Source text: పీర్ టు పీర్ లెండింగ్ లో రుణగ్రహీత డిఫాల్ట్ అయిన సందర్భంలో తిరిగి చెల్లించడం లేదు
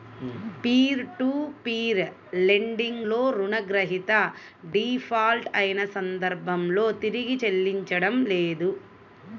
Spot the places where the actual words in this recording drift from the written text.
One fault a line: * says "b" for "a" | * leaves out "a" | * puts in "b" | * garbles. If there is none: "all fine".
all fine